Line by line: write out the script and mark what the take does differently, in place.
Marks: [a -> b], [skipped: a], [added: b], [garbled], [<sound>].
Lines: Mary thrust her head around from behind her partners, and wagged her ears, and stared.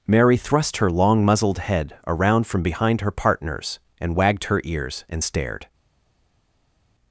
Mary thrust her [added: long muzzled] head around from behind her partners, and wagged her ears, and stared.